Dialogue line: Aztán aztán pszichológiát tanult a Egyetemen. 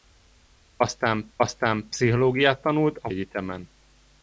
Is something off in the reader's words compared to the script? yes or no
no